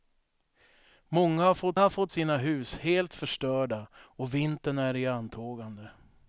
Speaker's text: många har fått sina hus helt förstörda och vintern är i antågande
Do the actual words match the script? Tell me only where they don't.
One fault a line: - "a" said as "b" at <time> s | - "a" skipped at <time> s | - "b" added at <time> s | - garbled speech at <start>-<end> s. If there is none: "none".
- "har fått" added at 1.8 s